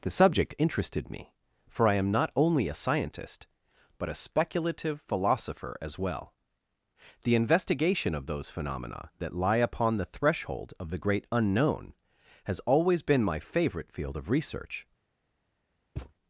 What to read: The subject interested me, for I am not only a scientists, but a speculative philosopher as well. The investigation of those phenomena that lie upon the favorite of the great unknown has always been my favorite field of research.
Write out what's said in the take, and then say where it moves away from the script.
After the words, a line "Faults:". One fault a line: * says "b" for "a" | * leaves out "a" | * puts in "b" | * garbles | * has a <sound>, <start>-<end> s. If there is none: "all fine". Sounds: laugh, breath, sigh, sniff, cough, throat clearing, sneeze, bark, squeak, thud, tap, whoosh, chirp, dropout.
The subject interested me, for I am not only a scientist, but a speculative philosopher as well. The investigation of those phenomena that lie upon the threshold of the great unknown has always been my favorite field of research.
Faults:
* says "scientist" for "scientists"
* says "threshold" for "favorite"
* has a thud, 16.0-16.1 s